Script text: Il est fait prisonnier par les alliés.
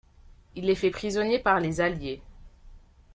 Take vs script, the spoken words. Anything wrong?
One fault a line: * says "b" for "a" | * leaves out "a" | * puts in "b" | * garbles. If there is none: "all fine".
all fine